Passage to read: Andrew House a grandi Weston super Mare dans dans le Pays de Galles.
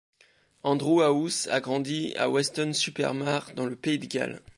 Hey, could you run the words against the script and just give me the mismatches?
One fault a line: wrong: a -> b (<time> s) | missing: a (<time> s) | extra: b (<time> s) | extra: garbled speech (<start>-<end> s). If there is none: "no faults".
extra: à (2.2 s)
missing: dans (3.6 s)